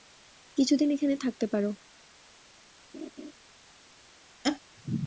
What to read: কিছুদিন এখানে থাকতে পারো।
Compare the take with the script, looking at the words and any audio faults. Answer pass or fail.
fail